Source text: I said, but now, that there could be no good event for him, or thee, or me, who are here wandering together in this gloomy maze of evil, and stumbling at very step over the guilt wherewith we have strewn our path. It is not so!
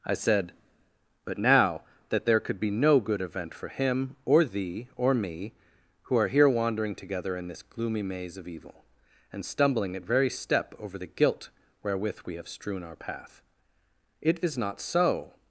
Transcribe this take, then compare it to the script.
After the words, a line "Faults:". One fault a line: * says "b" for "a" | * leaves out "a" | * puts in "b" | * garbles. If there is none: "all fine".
I said, but now, that there could be no good event for him, or thee, or me, who are here wandering together in this gloomy maze of evil, and stumbling at very step over the guilt wherewith we have strewn our path. It is not so!
Faults:
all fine